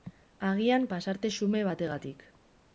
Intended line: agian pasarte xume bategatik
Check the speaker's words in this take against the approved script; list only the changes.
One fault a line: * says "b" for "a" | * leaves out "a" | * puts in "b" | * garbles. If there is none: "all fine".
all fine